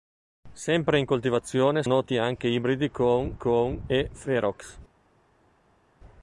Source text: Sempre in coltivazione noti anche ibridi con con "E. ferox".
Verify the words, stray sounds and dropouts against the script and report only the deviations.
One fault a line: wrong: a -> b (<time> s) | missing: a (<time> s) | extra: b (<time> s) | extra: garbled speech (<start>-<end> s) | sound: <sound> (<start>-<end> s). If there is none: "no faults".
no faults